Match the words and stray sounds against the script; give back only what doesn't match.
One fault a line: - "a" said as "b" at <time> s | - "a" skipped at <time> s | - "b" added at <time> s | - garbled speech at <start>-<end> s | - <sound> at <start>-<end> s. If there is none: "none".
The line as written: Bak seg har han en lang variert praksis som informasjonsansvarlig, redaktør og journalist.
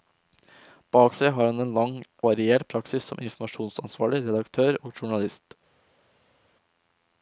none